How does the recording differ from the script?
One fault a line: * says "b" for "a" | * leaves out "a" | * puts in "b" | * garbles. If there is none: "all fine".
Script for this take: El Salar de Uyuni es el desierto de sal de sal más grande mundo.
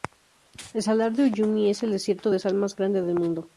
* leaves out "de sal"
* puts in "del"